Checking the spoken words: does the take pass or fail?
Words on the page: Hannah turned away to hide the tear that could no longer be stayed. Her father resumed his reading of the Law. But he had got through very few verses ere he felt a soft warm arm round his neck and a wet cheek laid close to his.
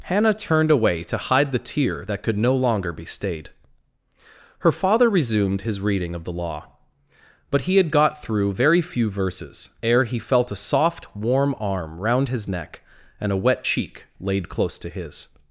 pass